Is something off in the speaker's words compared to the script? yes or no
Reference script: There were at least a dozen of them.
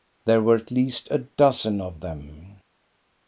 no